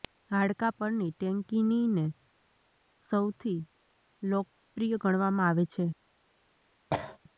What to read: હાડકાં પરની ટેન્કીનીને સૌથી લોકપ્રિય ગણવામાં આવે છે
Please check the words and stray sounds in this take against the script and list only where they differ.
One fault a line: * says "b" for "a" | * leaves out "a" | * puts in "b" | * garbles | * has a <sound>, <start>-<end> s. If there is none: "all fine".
* has a cough, 6.9-7.2 s